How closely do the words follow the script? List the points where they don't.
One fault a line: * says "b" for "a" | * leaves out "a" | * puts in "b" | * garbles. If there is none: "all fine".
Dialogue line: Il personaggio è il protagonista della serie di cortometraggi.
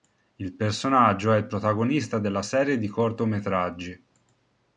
all fine